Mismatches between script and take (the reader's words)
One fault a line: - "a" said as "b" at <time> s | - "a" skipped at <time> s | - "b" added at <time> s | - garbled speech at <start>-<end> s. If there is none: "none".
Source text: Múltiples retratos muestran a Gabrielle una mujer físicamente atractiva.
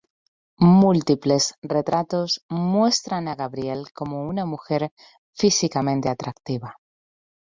- "como" added at 3.9 s